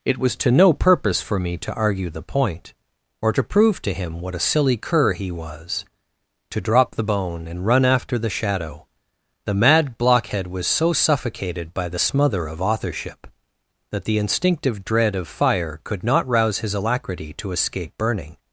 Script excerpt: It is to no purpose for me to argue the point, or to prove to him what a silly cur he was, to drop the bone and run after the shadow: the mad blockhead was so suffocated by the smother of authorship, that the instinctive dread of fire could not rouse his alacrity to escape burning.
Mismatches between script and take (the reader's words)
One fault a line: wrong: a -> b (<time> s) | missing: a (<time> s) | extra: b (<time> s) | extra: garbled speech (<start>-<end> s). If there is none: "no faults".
wrong: is -> was (0.2 s)